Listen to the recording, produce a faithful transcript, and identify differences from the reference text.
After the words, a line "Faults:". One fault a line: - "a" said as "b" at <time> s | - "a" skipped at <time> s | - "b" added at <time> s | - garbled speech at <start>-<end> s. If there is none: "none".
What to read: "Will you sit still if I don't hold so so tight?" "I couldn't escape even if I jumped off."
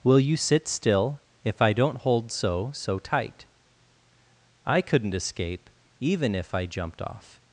"Will you sit still if I don't hold so so tight?" "I couldn't escape even if I jumped off."
Faults:
none